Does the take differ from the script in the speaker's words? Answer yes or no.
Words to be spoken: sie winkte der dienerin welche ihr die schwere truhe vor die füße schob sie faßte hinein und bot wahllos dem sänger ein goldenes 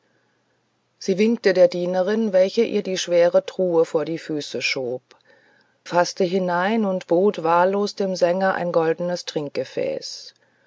yes